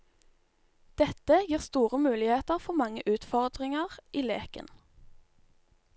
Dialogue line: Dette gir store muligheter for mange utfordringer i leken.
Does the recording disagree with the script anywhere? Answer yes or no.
no